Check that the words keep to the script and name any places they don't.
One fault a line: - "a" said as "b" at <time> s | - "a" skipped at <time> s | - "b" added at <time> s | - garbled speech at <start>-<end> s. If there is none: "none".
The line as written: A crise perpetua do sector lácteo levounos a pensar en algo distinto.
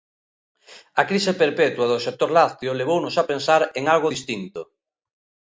none